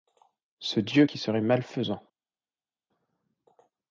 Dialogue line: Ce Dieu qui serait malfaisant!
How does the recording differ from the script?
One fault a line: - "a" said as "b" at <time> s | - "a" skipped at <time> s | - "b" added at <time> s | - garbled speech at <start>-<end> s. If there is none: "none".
none